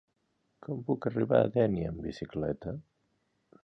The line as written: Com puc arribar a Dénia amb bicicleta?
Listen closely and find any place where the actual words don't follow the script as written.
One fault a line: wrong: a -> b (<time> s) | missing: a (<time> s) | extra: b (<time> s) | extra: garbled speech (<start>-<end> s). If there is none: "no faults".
no faults